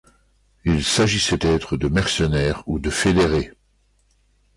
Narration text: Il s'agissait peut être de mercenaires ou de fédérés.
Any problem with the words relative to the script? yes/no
yes